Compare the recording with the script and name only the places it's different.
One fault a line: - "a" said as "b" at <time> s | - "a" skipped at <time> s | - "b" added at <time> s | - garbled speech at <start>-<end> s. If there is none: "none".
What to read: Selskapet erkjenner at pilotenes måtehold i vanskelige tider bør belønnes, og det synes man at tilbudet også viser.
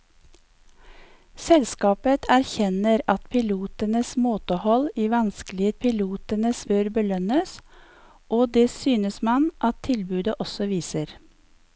- "tider" said as "pilotenes" at 5.8 s